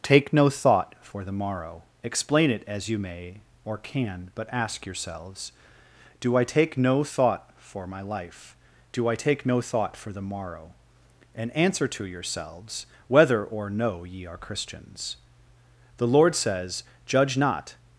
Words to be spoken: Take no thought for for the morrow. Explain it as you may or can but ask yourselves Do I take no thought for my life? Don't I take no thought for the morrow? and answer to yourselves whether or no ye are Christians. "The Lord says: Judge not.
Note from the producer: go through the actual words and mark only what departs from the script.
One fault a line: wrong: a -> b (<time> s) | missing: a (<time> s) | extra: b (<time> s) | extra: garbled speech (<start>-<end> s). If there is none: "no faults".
missing: for (1.2 s)
wrong: Don't -> Do (8.9 s)